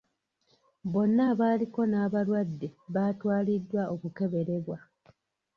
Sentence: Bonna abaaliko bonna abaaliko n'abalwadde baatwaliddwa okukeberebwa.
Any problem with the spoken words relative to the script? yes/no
yes